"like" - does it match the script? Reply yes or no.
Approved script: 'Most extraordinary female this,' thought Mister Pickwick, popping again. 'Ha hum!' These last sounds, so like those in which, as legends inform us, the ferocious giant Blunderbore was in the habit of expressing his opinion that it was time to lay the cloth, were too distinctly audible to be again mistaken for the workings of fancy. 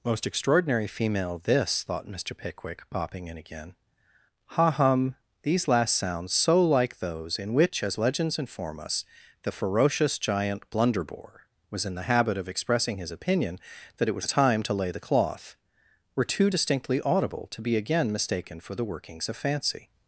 yes